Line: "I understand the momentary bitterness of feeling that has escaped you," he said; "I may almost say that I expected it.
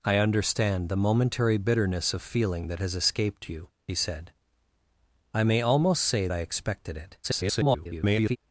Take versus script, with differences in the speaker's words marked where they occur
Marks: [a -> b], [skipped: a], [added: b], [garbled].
"I understand the momentary bitterness of feeling that has escaped you," he said; "I may almost say [skipped: that] I expected it. [garbled]